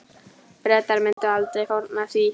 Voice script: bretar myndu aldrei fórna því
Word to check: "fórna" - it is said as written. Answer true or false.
true